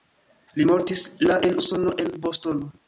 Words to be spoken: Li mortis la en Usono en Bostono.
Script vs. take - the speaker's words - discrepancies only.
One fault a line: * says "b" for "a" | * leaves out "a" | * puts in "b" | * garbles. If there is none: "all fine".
all fine